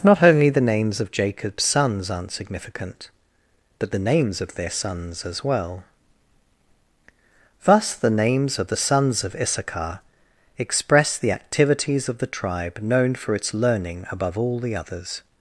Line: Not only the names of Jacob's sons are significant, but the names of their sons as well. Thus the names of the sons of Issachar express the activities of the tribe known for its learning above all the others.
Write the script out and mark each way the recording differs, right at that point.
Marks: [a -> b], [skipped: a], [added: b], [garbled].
Not only the names of Jacob's sons [are -> aren't] significant, but the names of their sons as well. Thus the names of the sons of Issachar express the activities of the tribe known for its learning above all the others.